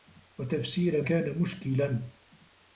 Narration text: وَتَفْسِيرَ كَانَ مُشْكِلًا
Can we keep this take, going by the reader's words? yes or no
yes